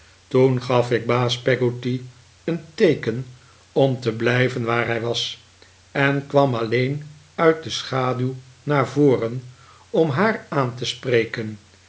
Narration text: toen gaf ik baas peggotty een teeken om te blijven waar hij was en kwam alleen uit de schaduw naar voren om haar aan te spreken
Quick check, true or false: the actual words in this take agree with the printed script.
true